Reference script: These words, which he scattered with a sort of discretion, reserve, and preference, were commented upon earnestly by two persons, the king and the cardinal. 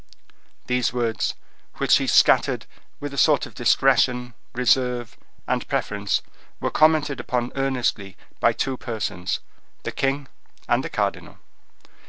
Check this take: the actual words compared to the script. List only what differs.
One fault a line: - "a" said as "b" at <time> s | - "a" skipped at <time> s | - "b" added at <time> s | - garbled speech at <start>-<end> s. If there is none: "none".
none